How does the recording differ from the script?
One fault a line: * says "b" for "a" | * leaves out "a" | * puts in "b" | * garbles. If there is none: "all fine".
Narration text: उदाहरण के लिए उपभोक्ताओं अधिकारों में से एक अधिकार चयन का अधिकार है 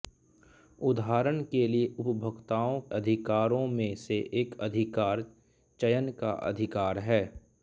all fine